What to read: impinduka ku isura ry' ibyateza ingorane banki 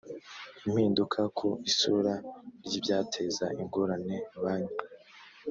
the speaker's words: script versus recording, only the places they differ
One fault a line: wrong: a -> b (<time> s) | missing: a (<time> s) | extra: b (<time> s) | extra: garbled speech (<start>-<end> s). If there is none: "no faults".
no faults